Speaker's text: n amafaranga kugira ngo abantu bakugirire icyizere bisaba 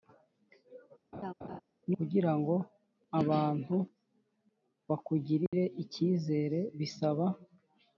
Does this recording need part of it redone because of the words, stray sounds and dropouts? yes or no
yes